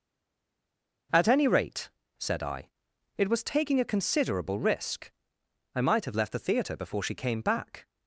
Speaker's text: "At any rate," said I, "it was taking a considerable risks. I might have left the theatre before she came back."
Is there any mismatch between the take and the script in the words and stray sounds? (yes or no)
yes